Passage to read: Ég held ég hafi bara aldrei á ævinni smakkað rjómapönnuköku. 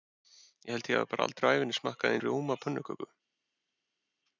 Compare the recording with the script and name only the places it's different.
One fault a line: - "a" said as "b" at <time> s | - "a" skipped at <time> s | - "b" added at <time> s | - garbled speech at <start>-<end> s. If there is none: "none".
none